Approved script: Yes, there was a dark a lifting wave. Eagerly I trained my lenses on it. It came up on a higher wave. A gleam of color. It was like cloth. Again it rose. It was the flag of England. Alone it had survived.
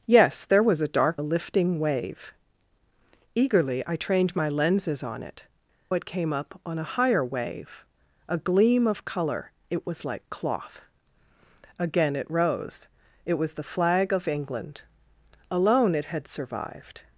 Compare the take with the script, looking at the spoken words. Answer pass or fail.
pass